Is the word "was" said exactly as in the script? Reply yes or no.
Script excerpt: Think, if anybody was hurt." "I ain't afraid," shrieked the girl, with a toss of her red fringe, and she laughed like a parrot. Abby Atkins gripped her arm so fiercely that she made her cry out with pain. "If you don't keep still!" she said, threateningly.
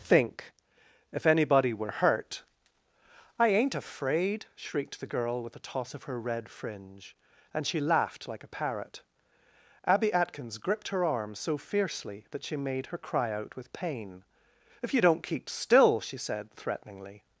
no